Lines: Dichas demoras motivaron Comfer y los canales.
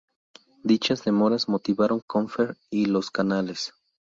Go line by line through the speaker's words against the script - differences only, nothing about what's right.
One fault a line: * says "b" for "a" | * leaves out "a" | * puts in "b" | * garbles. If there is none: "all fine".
all fine